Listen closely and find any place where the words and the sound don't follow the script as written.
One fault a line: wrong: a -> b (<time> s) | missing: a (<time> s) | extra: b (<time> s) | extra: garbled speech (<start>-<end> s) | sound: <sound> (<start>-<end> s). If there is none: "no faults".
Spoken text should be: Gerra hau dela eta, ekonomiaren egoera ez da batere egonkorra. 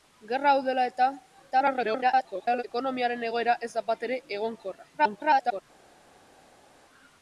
extra: garbled speech (1.5-2.6 s)
extra: garbled speech (5.0-5.6 s)